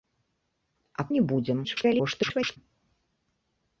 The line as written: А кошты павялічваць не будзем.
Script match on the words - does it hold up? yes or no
no